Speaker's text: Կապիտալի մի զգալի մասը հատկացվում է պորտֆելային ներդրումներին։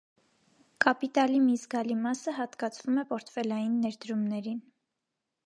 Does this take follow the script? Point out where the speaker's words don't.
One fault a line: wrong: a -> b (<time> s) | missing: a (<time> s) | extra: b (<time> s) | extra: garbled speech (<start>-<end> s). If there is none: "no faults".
no faults